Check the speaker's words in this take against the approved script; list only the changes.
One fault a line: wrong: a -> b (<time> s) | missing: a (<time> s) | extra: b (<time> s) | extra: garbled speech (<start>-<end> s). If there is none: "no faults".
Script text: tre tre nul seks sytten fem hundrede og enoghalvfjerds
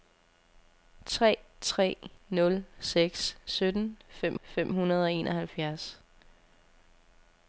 extra: fem (4.4 s)